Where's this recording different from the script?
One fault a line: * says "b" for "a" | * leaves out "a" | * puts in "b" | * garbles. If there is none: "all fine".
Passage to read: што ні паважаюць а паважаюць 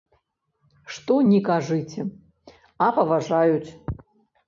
* says "кажыце" for "паважаюць"